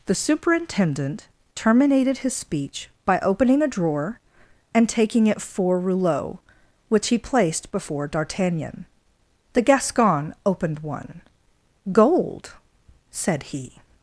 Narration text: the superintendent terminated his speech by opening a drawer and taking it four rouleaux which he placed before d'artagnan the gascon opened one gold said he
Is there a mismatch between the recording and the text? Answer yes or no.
no